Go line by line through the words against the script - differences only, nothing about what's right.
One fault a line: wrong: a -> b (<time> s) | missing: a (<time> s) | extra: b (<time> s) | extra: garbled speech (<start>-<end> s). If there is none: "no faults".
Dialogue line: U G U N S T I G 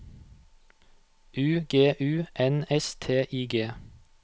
no faults